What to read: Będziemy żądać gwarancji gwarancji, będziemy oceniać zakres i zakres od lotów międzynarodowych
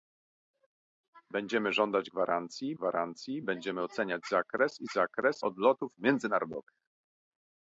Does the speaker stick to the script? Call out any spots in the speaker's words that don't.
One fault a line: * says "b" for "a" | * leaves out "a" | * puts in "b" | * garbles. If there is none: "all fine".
all fine